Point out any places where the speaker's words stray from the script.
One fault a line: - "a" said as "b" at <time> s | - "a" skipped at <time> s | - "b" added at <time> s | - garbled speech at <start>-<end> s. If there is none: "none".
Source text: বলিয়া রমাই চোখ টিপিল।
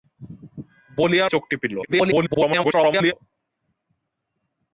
- "রমাই" skipped at 1.2 s
- garbled speech at 1.8-3.1 s